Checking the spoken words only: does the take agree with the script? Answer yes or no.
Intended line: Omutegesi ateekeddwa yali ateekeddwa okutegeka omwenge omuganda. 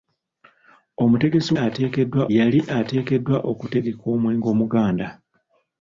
yes